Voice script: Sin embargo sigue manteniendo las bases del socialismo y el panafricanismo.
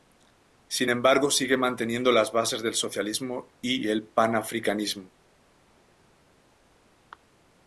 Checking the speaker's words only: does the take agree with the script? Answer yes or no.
yes